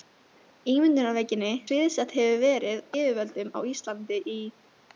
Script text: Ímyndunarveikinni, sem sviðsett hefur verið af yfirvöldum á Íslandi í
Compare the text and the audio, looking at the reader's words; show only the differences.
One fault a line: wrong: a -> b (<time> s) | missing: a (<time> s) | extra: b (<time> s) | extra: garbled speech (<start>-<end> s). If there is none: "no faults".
missing: sem (1.5 s)
missing: af (2.8 s)